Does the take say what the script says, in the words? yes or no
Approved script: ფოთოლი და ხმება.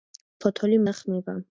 yes